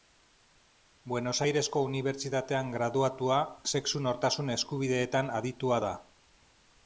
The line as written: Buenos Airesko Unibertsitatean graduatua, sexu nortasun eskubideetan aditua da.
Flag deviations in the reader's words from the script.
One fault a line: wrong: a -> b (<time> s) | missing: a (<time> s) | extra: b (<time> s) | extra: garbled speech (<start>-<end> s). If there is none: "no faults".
no faults